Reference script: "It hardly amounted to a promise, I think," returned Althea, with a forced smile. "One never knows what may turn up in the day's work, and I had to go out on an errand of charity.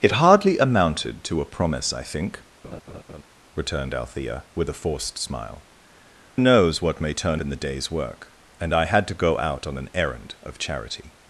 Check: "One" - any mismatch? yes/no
yes